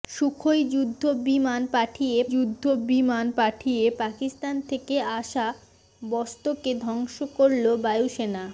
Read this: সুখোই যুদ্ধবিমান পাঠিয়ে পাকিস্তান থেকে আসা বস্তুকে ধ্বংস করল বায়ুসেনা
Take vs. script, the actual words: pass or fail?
fail